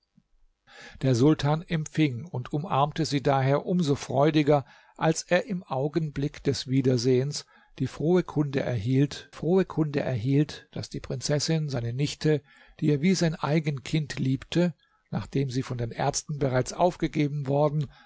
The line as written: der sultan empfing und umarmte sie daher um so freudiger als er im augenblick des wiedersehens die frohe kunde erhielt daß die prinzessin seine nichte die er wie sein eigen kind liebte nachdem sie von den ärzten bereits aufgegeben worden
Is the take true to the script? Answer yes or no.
no